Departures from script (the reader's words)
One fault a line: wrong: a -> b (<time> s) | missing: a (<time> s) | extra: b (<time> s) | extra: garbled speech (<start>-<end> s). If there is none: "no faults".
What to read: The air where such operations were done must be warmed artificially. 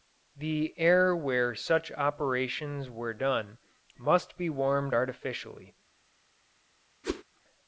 no faults